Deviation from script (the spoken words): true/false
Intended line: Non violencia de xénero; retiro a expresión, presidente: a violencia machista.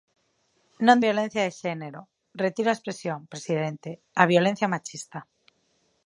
false